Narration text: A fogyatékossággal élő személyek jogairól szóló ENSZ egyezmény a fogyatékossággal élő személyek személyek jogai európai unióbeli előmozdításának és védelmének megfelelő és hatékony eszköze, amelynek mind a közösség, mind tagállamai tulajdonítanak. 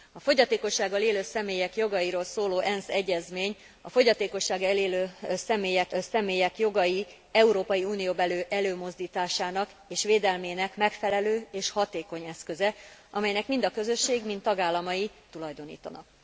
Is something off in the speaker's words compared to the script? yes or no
no